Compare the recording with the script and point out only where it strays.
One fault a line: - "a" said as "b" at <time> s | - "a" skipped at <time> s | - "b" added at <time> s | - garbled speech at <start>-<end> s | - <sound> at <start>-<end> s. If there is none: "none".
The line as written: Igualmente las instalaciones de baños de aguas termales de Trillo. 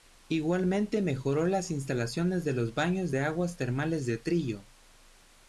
- "mejoró" added at 1.0 s
- "los" added at 2.5 s